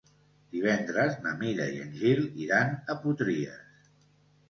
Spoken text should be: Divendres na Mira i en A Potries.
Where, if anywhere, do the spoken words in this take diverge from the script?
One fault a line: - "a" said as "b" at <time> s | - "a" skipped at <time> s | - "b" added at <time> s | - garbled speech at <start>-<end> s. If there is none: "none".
- "Gil iran" added at 2.0 s